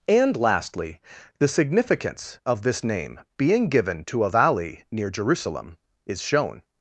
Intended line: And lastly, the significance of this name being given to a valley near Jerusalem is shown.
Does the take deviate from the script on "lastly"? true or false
false